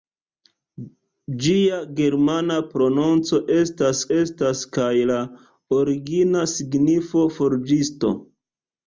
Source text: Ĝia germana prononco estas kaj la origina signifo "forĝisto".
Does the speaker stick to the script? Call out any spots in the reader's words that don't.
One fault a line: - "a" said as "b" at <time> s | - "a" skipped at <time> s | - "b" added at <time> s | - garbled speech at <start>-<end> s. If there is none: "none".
- "estas" added at 4.2 s